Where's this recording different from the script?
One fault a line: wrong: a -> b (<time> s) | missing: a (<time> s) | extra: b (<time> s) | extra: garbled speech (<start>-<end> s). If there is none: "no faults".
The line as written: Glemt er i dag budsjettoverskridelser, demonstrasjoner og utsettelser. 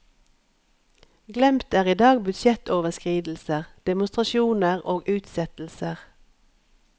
no faults